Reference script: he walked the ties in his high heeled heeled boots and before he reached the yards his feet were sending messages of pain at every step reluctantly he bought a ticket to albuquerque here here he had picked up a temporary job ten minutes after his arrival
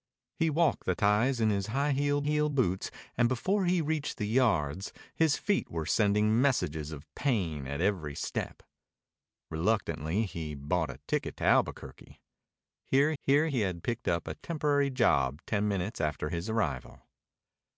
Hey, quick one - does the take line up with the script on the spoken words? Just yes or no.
yes